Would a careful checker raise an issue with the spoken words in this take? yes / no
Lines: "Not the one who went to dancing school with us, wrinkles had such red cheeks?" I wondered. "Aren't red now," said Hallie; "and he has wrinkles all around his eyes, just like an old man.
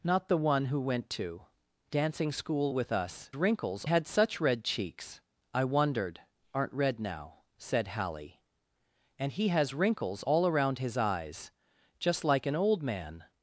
no